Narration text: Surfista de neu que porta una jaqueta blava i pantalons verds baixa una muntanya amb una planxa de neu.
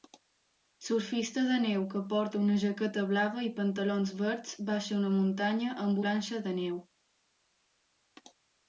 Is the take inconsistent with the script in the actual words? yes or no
yes